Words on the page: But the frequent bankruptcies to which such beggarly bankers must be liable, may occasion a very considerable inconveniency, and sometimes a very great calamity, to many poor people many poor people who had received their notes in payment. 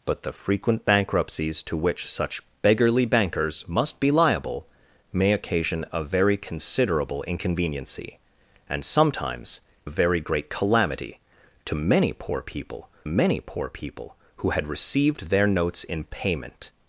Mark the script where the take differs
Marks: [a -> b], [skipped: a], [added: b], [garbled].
But the frequent bankruptcies to which such beggarly bankers must be liable, may occasion a very considerable inconveniency, and sometimes a very great calamity, to many poor people many poor people who had received their notes in payment.